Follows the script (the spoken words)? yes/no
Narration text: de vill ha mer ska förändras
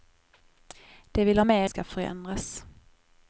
yes